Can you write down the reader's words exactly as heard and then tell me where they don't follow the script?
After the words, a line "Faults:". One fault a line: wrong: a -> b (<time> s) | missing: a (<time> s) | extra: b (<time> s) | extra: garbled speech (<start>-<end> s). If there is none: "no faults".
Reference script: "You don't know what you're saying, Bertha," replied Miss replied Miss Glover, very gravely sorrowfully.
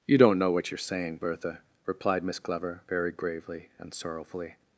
"You don't know what you're saying, Bertha," replied Miss Glover, very gravely and sorrowfully.
Faults:
missing: replied Miss (2.4 s)
extra: and (3.8 s)